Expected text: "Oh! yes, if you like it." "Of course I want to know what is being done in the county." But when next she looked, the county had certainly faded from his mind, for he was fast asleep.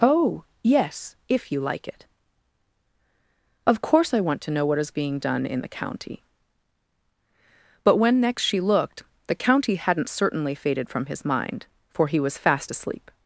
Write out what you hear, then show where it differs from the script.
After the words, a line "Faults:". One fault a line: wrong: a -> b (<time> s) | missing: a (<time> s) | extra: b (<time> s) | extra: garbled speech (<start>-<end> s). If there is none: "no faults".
"Oh! yes, if you like it." "Of course I want to know what is being done in the county." But when next she looked, the county hadn't certainly faded from his mind, for he was fast asleep.
Faults:
wrong: had -> hadn't (9.8 s)